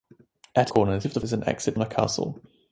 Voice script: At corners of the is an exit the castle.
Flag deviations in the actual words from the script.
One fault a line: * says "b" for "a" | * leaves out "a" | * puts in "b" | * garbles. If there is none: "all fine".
all fine